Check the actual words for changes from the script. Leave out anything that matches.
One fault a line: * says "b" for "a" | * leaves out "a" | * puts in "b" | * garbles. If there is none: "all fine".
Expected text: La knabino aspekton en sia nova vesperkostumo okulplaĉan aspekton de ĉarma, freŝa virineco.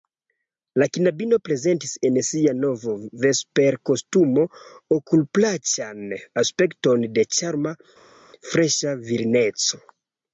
* says "prezentis" for "aspekton"